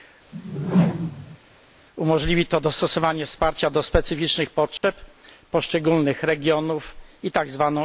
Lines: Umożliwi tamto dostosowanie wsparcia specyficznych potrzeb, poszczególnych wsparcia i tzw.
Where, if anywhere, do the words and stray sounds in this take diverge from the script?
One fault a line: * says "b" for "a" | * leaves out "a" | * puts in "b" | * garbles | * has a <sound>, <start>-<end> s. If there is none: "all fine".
* has a whoosh, 0.3-1.4 s
* says "to" for "tamto"
* puts in "do"
* has a dropout, 4.8-4.8 s
* says "regionów" for "wsparcia"